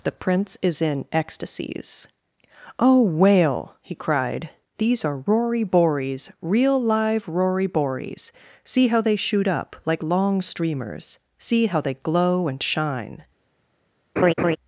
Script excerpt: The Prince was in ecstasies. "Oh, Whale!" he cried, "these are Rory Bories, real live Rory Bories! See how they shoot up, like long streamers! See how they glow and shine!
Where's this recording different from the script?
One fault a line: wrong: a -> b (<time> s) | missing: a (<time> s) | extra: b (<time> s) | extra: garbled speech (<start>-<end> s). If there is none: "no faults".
wrong: was -> is (0.6 s)